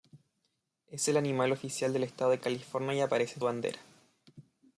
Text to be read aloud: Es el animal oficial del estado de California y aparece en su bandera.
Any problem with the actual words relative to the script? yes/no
yes